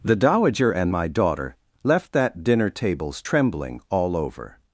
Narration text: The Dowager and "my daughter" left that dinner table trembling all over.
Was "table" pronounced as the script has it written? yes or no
no